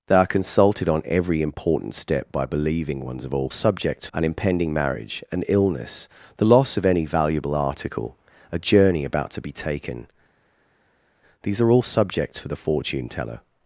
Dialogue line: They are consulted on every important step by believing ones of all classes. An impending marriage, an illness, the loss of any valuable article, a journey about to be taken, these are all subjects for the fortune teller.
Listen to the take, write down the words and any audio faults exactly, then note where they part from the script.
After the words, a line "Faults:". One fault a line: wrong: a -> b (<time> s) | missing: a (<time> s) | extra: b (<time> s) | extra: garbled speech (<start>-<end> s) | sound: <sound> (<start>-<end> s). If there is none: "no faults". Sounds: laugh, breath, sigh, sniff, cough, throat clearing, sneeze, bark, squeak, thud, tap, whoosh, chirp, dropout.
They are consulted on every important step by believing ones of all subjects. An impending marriage, an illness, the loss of any valuable article, a journey about to be taken, these are all subjects for the fortune teller.
Faults:
wrong: classes -> subjects (3.5 s)